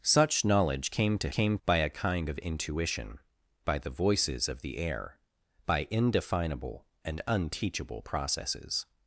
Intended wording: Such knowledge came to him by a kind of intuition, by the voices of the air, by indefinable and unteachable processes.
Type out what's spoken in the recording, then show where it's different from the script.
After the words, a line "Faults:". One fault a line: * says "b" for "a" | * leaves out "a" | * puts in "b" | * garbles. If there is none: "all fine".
Such knowledge came to came by a kind of intuition, by the voices of the air, by indefinable and unteachable processes.
Faults:
* says "came" for "him"